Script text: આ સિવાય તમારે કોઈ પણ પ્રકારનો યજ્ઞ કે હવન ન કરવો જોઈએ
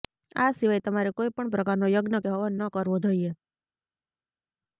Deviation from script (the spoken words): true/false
false